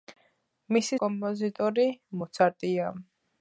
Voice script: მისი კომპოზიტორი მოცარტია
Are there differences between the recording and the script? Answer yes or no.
no